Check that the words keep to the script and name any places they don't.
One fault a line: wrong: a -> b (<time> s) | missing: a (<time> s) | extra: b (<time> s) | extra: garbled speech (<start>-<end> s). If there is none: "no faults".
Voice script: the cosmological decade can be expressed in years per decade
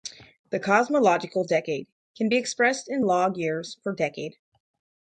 extra: log (3.0 s)